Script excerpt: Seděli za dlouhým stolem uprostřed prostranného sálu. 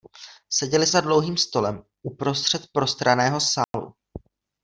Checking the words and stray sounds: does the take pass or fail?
fail